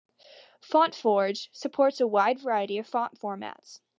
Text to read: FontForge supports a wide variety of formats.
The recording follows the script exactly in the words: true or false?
false